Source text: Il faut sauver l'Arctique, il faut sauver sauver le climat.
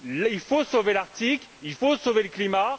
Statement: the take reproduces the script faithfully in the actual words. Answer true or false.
false